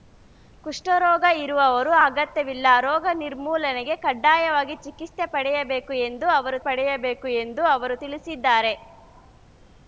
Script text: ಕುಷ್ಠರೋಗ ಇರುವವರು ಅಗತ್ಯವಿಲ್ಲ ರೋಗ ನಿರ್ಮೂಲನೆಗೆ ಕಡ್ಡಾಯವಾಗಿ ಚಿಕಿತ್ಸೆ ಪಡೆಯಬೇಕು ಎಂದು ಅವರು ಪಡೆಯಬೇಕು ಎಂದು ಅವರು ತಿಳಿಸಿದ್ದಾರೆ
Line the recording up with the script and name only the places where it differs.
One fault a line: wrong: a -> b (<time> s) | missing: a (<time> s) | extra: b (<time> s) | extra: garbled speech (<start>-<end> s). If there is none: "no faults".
no faults